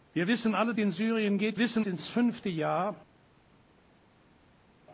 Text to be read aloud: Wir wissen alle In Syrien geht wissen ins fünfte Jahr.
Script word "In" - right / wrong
right